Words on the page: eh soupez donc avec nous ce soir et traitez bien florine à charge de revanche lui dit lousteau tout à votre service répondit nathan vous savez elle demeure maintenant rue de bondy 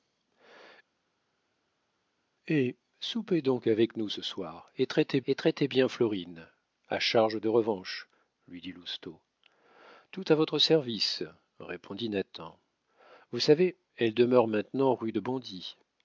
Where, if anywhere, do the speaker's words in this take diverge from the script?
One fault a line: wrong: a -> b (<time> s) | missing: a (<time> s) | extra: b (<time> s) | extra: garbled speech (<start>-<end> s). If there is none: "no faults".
extra: et traitez (5.2 s)